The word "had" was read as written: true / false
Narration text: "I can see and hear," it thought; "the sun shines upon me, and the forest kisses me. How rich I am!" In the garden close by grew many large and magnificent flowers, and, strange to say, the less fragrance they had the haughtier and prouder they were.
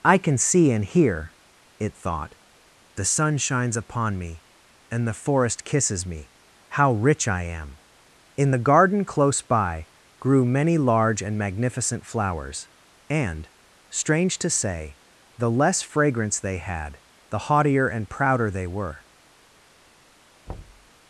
true